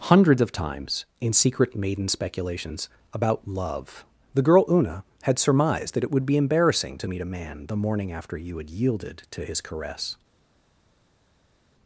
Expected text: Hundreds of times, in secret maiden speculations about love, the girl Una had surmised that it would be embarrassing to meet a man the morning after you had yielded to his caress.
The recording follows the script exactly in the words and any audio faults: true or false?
true